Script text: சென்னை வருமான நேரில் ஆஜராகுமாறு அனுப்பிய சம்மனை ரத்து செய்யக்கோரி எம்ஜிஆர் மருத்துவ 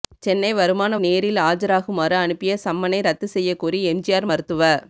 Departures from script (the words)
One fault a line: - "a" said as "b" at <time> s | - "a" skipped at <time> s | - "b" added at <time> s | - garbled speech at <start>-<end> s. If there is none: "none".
none